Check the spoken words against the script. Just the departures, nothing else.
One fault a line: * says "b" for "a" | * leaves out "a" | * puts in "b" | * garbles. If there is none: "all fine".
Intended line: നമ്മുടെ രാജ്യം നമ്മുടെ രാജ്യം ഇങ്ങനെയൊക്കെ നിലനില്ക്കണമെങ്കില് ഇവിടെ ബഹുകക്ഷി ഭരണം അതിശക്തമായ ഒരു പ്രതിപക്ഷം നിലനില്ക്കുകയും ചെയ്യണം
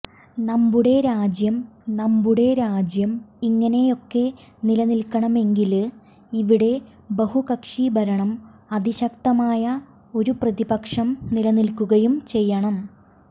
all fine